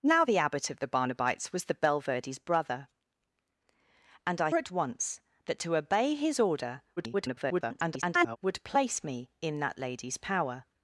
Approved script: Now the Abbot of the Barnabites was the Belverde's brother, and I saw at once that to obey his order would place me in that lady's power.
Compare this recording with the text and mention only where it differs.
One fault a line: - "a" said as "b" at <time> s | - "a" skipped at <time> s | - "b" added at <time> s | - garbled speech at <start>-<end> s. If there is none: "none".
- "saw" skipped at 4.5 s
- garbled speech at 7.0-8.4 s